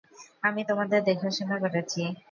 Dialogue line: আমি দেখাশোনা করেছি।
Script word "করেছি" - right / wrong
right